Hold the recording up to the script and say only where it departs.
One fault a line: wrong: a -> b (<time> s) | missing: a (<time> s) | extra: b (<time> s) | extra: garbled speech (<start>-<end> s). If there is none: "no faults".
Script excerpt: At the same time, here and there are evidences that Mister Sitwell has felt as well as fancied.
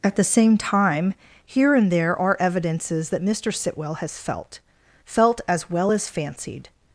extra: felt (5.0 s)